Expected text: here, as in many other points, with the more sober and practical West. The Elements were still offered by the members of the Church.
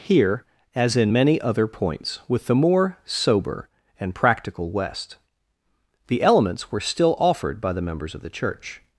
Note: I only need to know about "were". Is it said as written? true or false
true